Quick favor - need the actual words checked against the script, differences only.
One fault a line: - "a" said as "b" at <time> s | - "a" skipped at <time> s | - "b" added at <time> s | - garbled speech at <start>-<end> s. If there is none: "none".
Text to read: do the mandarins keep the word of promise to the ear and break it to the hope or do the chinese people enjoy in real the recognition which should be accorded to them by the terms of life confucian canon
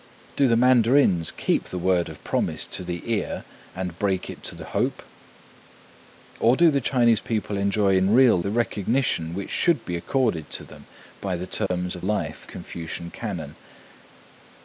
none